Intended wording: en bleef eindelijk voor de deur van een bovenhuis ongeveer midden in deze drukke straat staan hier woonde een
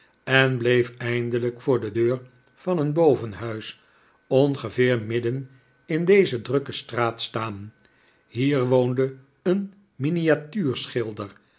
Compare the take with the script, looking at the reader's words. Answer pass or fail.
pass